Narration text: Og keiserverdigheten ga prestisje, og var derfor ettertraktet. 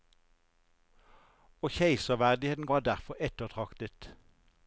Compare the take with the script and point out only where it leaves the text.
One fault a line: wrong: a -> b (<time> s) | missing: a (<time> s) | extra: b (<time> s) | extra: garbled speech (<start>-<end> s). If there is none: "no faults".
missing: ga prestisje og (2.7 s)